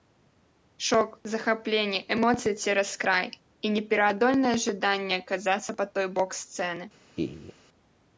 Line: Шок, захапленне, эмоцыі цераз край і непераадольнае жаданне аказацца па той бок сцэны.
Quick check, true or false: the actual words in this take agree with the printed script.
true